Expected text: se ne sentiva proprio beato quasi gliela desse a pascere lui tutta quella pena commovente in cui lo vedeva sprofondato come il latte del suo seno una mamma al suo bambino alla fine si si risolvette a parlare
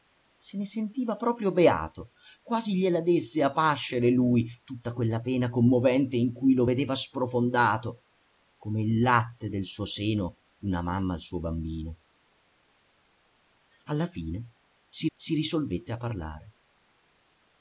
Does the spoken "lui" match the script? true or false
true